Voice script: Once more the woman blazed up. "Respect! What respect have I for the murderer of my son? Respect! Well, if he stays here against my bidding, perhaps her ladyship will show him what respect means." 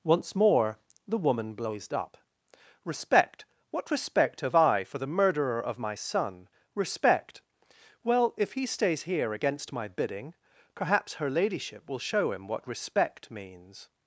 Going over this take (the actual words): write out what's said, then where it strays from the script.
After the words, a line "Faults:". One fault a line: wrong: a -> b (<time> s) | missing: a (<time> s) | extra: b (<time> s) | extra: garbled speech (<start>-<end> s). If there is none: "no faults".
Once more the woman blazed up. "Respect! What respect have I for the murderer of my son? Respect! Well, if he stays here against my bidding, perhaps her ladyship will show him what respect means."
Faults:
no faults